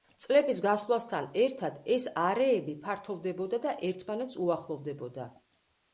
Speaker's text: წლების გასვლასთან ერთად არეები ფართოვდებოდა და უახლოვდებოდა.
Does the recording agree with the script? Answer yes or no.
no